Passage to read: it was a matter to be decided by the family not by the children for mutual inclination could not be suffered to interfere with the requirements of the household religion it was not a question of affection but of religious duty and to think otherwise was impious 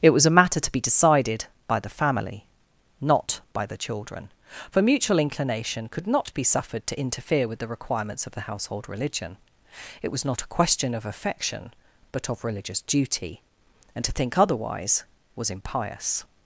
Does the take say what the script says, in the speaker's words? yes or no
yes